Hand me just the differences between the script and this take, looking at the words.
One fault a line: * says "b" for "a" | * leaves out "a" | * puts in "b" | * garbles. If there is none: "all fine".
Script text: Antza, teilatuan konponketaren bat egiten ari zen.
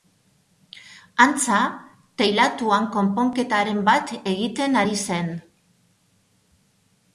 all fine